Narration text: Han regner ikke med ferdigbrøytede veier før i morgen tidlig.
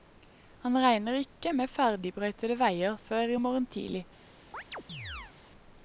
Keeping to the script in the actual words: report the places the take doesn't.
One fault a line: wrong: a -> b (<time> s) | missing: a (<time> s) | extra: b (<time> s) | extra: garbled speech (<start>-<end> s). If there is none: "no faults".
no faults